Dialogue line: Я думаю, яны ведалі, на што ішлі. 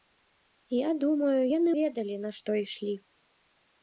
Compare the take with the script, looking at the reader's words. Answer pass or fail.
pass